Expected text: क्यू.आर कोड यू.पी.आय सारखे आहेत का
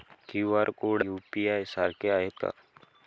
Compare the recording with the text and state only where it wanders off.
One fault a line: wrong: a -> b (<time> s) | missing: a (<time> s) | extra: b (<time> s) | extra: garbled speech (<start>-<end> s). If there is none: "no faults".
no faults